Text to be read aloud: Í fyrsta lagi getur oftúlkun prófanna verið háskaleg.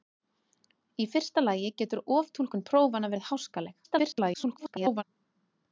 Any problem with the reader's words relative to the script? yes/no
yes